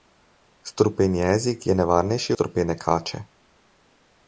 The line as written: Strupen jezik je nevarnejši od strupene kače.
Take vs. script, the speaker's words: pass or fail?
fail